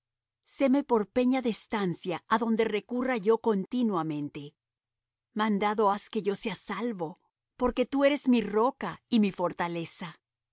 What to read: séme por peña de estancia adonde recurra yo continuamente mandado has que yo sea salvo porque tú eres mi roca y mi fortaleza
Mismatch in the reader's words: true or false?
false